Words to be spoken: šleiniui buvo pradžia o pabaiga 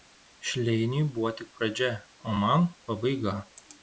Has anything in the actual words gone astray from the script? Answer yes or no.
yes